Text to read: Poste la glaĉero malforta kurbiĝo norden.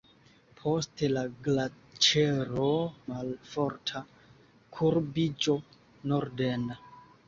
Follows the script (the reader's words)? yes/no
yes